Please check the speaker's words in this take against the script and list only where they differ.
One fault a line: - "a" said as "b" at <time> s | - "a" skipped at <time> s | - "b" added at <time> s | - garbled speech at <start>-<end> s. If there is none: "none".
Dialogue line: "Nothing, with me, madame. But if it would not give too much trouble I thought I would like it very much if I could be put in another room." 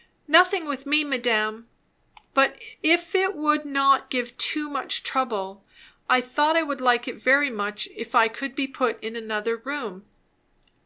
none